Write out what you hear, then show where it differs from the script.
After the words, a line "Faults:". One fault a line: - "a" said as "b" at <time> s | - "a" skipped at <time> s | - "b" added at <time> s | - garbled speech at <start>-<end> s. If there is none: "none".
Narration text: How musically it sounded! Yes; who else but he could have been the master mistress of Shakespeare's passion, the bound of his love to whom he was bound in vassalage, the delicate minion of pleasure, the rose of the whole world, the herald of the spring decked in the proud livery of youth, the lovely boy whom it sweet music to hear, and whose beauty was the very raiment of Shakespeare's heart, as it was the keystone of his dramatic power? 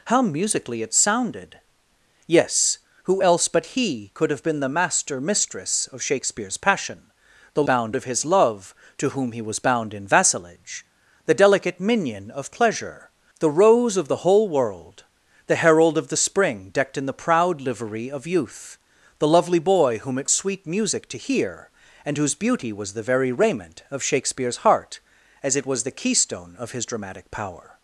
How musically it sounded! Yes; who else but he could have been the master mistress of Shakespeare's passion, the bound of his love to whom he was bound in vassalage, the delicate minion of pleasure, the rose of the whole world, the herald of the spring decked in the proud livery of youth, the lovely boy whom it sweet music to hear, and whose beauty was the very raiment of Shakespeare's heart, as it was the keystone of his dramatic power?
Faults:
none